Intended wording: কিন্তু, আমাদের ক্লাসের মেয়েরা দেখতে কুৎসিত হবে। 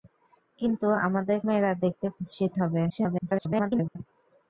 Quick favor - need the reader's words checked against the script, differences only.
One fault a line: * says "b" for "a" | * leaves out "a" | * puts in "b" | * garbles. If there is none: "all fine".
* leaves out "ক্লাসের"
* garbles